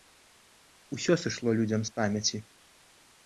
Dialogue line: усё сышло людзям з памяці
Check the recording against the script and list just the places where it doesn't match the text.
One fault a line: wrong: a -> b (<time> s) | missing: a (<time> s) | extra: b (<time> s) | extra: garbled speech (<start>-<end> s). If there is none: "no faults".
no faults